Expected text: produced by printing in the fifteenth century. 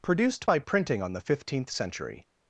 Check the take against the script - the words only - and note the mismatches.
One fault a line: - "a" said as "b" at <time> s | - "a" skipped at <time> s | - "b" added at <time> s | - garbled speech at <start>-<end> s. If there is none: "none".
- "in" said as "on" at 1.0 s